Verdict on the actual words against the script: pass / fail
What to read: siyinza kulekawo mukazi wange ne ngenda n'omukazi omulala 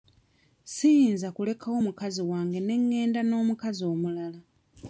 pass